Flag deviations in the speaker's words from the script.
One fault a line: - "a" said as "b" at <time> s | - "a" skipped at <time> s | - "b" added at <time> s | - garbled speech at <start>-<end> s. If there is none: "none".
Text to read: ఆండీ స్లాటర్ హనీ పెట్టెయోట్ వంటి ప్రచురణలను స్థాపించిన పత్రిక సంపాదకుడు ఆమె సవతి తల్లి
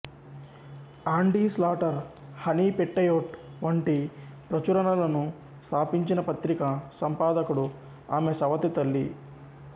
none